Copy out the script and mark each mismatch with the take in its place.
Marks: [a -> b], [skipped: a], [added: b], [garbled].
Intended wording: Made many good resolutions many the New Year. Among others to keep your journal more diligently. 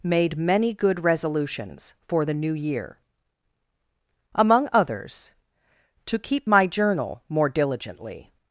Made many good resolutions [many -> for] the New Year. Among others to keep [your -> my] journal more diligently.